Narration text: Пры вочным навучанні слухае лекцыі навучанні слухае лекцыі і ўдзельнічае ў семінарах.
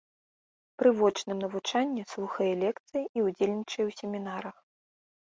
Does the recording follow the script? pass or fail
fail